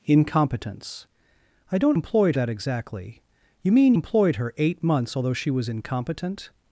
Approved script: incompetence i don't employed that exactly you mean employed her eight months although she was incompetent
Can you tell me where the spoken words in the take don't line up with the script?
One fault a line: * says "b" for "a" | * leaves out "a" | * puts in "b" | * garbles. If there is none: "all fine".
all fine